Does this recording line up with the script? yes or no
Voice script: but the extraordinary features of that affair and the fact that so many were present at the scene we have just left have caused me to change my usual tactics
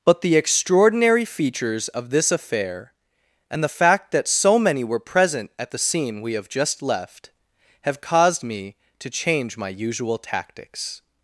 no